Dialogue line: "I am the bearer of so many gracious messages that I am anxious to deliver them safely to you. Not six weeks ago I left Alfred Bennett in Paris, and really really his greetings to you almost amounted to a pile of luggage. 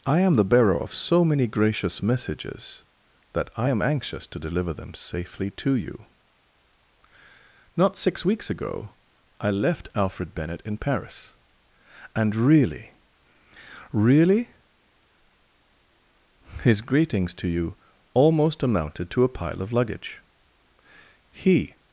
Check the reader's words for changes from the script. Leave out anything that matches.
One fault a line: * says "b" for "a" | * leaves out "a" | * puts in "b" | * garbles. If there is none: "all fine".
* puts in "He"